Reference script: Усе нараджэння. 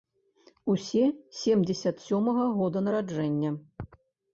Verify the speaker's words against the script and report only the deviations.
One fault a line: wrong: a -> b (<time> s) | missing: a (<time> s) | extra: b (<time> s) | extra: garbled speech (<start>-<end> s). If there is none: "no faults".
extra: семдзесят сёмага года (1.4 s)